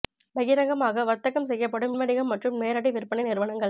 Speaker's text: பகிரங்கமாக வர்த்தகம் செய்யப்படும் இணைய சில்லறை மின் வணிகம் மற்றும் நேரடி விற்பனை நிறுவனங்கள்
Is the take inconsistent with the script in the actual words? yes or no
yes